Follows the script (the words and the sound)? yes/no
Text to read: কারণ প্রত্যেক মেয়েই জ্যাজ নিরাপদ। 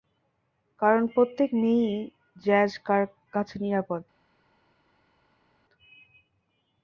no